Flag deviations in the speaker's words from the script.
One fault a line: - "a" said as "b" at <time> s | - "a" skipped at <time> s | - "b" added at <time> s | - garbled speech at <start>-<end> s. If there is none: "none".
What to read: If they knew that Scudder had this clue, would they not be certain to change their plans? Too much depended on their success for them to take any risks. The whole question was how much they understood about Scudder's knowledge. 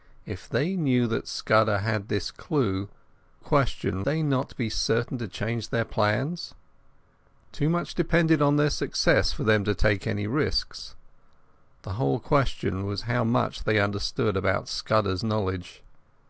- "would" said as "question" at 3.4 s